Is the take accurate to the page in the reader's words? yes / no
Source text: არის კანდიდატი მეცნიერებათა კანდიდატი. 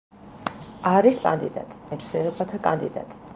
yes